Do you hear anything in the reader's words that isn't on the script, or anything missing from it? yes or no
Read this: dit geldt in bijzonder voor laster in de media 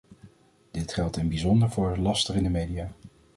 no